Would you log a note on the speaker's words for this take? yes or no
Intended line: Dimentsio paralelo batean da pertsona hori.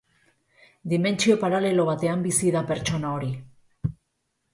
yes